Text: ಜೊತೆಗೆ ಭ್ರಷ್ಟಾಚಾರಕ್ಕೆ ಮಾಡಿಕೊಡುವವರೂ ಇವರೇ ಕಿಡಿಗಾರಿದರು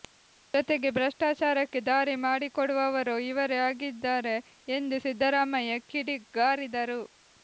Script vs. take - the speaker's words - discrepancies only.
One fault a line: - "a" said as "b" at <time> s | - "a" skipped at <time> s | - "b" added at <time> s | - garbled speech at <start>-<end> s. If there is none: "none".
- "ದಾರಿ" added at 1.9 s
- "ಆಗಿದ್ದಾರೆ ಎಂದು ಸಿದ್ದರಾಮಯ್ಯ" added at 3.7 s